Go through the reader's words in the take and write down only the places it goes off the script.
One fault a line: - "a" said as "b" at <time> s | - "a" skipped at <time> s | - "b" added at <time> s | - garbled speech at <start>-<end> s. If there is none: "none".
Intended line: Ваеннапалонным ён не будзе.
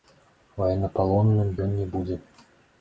none